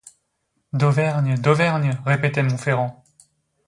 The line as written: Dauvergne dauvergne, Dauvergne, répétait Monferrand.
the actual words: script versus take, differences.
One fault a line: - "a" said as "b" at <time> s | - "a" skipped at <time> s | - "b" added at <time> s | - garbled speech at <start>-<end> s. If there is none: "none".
- "Dauvergne" skipped at 1.9 s